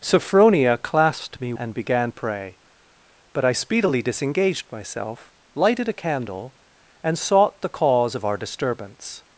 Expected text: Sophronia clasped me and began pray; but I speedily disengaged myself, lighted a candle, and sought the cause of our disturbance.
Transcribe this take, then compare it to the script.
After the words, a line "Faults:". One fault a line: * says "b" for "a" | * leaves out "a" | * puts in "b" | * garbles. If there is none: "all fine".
Sophronia clasped me and began pray; but I speedily disengaged myself, lighted a candle, and sought the cause of our disturbance.
Faults:
all fine